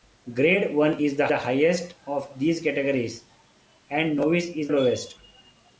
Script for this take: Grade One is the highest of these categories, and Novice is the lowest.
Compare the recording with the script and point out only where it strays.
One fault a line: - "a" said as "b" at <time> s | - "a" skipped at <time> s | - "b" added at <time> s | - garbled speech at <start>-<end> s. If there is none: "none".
- "the" added at 1.3 s
- "the" skipped at 4.7 s